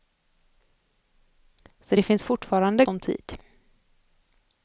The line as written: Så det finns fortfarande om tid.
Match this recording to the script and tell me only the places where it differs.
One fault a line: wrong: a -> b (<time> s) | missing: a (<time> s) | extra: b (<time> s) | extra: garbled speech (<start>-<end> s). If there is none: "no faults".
no faults